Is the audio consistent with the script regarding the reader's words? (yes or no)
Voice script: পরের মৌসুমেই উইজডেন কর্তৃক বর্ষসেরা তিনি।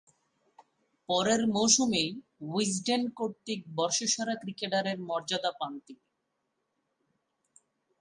no